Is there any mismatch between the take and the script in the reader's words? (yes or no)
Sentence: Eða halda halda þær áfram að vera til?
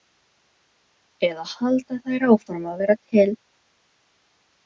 yes